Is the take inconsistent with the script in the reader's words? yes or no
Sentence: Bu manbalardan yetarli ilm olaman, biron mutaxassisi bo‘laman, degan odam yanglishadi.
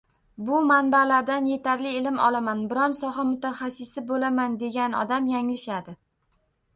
yes